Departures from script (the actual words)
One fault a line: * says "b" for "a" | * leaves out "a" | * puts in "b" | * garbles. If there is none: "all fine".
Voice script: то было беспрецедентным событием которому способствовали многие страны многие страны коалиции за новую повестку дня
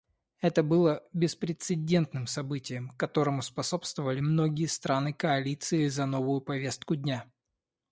* says "это" for "то"
* leaves out "многие страны"